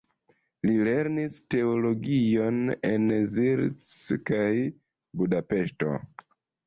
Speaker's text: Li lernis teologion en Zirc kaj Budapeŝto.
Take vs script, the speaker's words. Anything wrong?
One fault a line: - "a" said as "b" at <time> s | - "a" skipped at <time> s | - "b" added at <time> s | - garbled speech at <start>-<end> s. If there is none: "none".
none